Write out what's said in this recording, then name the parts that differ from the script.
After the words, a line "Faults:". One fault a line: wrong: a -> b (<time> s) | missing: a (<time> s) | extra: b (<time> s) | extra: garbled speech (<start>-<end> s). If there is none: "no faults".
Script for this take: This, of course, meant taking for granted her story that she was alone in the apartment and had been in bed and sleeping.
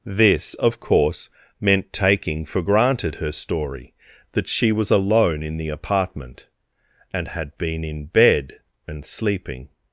This, of course, meant taking for granted her story that she was alone in the apartment and had been in bed and sleeping.
Faults:
no faults